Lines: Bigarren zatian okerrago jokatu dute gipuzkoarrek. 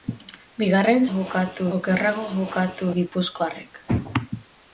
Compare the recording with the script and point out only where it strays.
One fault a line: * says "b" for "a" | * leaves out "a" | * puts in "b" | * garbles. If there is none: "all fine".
* says "jokatu" for "zatian"
* leaves out "dute"